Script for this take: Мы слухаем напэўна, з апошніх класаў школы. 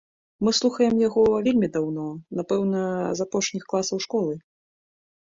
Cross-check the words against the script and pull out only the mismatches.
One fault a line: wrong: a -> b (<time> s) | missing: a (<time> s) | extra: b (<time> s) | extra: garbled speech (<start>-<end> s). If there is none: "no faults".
extra: яго вельмі даўно (1.1 s)